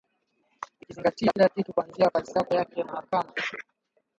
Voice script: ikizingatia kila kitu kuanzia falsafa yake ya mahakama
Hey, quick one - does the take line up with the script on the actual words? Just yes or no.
yes